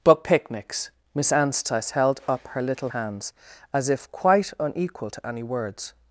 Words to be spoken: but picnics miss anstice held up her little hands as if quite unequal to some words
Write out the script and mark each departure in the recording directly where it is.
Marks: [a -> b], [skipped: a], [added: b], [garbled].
but picnics miss anstice held up her little hands as if quite unequal to [some -> any] words